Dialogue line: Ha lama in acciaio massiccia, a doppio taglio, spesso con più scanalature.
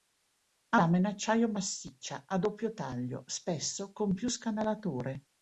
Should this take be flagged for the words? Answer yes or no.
no